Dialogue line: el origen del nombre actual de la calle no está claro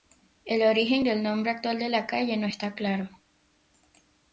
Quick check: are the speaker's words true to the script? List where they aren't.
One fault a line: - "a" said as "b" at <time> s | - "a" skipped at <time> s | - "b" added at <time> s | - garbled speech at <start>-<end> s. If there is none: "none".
none